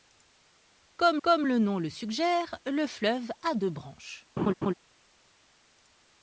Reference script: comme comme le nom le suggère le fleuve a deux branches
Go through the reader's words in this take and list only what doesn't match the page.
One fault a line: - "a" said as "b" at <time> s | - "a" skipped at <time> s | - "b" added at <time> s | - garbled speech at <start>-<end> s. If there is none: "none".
none